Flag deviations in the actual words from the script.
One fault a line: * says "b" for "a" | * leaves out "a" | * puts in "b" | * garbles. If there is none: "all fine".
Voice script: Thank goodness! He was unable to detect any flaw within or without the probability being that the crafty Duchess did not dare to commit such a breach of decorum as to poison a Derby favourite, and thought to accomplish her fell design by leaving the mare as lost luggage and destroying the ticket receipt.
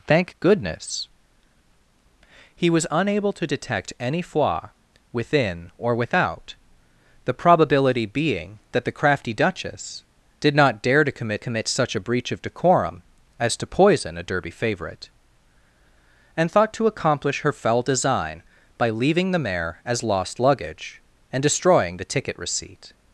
* puts in "commit"